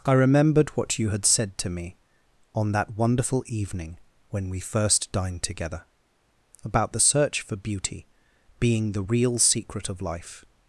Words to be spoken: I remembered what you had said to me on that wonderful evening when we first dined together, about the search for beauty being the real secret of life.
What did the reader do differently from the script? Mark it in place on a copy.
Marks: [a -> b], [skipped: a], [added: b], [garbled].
I remembered what you had said to me on that wonderful evening when we first dined together, about the search for beauty being the real secret of life.